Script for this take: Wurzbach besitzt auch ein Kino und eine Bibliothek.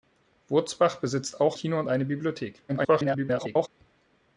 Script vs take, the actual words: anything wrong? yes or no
yes